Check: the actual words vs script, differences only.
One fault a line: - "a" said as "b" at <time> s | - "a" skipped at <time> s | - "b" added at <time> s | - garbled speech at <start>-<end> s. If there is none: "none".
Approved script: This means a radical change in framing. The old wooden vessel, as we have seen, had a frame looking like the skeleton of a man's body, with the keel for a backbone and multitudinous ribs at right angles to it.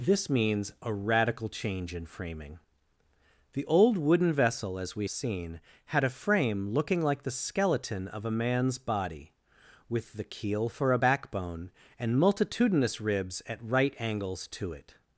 - "have" skipped at 5.1 s